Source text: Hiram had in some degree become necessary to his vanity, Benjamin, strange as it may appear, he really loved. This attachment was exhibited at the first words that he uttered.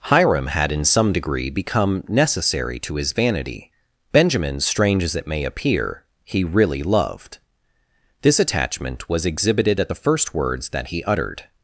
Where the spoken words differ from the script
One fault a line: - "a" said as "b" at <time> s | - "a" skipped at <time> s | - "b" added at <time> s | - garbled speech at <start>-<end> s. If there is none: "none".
none